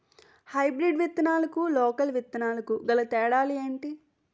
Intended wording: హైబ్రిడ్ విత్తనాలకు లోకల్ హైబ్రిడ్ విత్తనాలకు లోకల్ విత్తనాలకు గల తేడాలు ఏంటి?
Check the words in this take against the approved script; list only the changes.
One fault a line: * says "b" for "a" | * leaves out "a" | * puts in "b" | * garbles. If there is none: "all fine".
* leaves out "హైబ్రిడ్ విత్తనాలకు లోకల్"